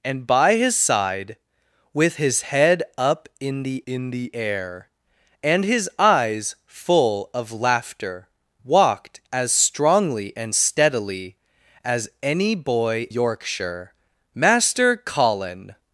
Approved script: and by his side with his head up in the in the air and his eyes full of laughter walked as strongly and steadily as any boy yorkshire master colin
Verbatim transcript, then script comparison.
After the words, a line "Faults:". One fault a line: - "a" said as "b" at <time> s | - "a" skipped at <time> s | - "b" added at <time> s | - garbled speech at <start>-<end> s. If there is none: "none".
and by his side with his head up in the in the air and his eyes full of laughter walked as strongly and steadily as any boy yorkshire master colin
Faults:
none